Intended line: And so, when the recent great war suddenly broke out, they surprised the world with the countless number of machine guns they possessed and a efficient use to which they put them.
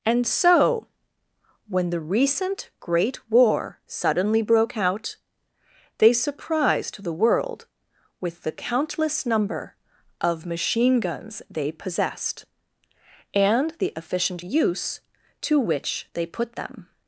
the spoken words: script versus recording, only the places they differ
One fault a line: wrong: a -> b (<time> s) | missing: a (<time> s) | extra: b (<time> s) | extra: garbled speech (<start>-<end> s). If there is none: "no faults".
wrong: a -> the (13.8 s)